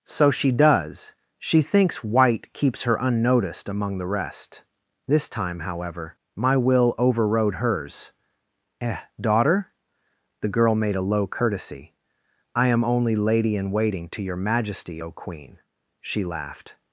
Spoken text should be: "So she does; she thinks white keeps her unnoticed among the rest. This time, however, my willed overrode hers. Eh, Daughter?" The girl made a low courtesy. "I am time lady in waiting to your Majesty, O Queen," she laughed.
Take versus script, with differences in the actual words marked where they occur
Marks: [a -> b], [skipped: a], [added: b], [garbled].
"So she does; she thinks white keeps her unnoticed among the rest. This time, however, my [willed -> will] overrode hers. Eh, Daughter?" The girl made a low courtesy. "I am [time -> only] lady in waiting to your Majesty, O Queen," she laughed.